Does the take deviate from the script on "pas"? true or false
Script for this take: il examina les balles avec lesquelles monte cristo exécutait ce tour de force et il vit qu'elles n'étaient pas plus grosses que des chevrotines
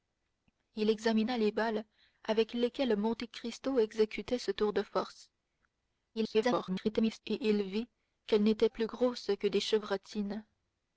true